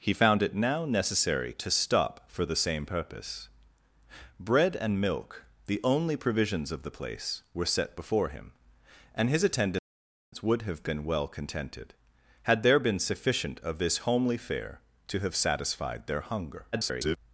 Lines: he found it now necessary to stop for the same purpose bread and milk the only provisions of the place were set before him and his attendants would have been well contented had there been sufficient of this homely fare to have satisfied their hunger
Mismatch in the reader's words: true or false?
true